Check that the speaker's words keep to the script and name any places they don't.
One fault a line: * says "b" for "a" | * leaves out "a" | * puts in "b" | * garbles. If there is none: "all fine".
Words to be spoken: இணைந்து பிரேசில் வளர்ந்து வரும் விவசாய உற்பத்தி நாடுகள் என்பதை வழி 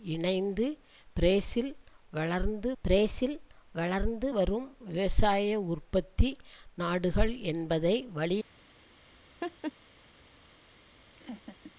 * puts in "பிரேசில் வளர்ந்து"